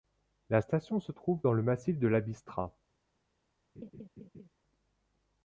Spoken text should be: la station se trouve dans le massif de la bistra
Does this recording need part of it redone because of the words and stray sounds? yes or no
yes